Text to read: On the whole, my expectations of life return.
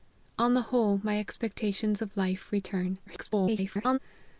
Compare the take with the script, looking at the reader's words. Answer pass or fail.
fail